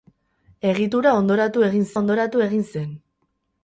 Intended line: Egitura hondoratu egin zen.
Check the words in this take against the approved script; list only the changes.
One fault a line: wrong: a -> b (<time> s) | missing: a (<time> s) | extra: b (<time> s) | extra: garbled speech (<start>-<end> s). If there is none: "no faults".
extra: hondoratu egin (2.0 s)